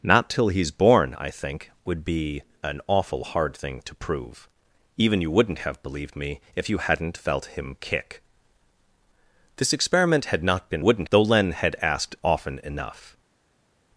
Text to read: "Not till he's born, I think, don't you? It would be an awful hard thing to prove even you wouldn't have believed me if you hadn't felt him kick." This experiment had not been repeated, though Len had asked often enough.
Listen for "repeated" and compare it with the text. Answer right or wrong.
wrong